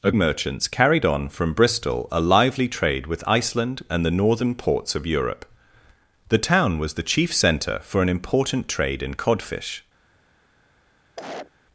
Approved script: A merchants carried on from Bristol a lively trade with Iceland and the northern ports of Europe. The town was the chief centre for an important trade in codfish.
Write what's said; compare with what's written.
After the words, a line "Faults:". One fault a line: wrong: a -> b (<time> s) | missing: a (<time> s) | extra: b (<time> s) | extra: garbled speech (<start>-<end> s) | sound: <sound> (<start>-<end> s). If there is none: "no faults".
A merchants carried on from Bristol a lively trade with Iceland and the northern ports of Europe. The town was the chief centre for an important trade in codfish.
Faults:
sound: cough (11.2-11.5 s)